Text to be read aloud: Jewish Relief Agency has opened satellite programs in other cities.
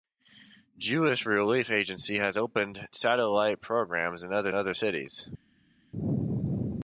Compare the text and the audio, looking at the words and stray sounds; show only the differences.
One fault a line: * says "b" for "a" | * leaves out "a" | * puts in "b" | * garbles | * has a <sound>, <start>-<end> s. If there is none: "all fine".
* puts in "other"